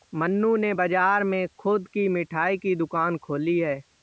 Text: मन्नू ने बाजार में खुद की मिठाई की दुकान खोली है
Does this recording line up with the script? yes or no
yes